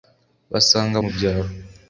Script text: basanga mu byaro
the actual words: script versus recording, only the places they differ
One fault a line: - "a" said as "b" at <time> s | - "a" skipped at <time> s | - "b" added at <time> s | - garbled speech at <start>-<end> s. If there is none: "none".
none